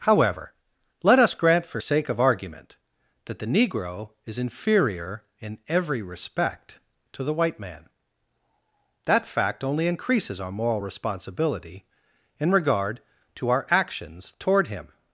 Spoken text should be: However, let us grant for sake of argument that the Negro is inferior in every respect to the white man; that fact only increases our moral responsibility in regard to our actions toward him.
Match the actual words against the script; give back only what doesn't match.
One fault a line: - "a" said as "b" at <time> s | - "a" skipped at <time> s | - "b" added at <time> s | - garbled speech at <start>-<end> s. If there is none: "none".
none